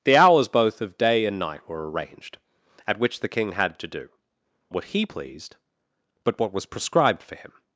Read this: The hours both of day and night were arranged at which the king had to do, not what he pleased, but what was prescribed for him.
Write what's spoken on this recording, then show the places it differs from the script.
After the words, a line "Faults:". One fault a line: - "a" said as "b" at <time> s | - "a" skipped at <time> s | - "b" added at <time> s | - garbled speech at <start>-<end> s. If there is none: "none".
The hours both of day and night were arranged at which the king had to do, what he pleased, but what was prescribed for him.
Faults:
- "not" skipped at 4.1 s